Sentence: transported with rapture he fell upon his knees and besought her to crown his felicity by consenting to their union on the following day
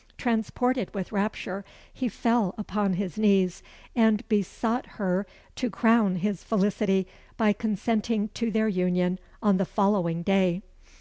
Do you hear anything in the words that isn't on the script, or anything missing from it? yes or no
no